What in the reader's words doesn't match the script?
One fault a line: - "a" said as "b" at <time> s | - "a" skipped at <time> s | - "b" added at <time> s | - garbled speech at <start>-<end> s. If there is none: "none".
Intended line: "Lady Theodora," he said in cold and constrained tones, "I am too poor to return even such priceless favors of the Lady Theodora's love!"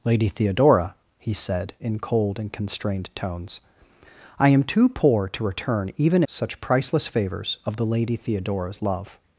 none